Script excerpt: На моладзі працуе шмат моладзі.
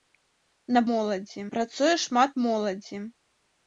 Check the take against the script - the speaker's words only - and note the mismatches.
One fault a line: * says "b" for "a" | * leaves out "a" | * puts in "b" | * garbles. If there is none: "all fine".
all fine